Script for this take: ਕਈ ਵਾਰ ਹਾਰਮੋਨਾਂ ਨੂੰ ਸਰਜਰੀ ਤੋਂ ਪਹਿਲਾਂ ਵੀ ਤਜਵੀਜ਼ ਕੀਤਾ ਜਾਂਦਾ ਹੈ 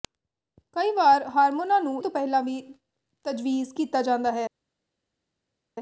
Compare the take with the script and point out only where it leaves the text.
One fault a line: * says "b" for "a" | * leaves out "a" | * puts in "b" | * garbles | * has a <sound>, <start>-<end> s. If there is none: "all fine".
* leaves out "ਸਰਜਰੀ"